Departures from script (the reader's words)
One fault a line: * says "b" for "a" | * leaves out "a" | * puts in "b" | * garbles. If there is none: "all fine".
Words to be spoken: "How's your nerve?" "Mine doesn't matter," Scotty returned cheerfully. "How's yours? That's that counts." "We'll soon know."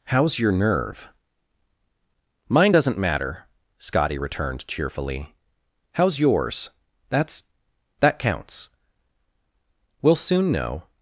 all fine